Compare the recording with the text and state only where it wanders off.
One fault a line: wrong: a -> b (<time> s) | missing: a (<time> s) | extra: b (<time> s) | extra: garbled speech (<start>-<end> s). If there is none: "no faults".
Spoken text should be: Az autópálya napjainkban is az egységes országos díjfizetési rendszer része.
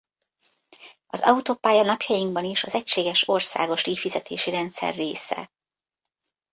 no faults